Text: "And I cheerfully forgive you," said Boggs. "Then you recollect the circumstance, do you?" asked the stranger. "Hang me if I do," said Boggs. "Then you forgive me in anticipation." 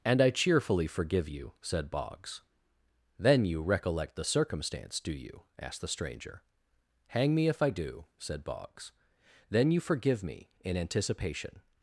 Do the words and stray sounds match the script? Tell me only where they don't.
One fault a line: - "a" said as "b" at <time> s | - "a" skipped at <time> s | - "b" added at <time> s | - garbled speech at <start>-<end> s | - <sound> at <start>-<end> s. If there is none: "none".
none